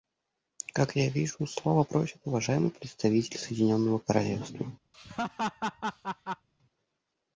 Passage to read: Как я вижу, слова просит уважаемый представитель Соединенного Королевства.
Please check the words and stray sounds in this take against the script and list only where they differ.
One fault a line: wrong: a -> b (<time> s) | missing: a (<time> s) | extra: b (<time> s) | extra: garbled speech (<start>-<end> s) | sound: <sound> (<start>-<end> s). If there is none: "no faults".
sound: laugh (4.9-6.5 s)